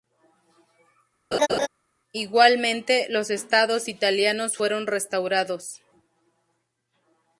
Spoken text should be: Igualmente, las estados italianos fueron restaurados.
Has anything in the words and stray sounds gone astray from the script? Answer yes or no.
yes